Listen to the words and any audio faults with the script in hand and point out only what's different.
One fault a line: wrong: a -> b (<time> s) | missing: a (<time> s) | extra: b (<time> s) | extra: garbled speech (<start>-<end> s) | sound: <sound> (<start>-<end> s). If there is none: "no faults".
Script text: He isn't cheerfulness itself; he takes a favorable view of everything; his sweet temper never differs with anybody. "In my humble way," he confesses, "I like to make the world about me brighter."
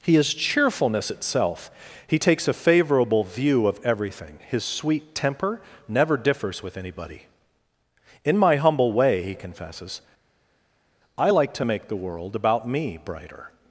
wrong: isn't -> is (0.1 s)